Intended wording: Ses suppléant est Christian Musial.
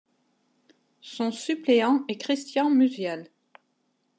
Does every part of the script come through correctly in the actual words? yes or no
no